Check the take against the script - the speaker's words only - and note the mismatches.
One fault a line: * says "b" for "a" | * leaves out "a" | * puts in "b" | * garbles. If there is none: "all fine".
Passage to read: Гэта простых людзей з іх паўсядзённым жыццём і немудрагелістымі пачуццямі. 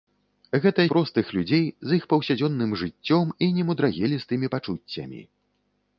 all fine